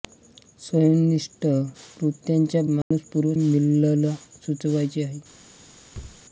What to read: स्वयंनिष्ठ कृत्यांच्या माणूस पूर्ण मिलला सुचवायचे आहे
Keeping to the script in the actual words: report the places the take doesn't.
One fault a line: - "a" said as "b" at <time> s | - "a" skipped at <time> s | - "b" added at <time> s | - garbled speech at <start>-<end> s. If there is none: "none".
none